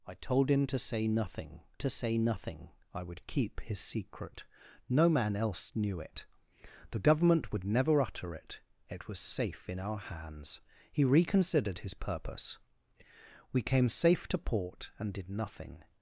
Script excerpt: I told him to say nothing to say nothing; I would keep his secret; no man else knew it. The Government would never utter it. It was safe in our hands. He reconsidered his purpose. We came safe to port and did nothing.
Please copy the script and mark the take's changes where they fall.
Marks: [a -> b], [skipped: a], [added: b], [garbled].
I told him to say nothing to say nothing; I would keep his secret; no man else knew it. The Government would never utter it. It was safe in our hands. He reconsidered his purpose. We came safe to port and did nothing.